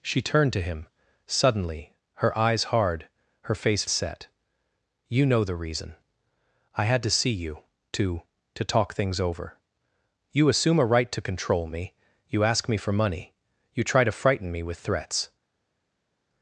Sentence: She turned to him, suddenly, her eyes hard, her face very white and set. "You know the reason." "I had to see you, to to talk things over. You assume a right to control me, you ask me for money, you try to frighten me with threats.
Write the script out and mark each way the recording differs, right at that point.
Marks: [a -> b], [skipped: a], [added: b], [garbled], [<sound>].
She turned to him, suddenly, her eyes hard, her face [skipped: very white and] set. "You know the reason." "I had to see you, to to talk things over. You assume a right to control me, you ask me for money, you try to frighten me with threats.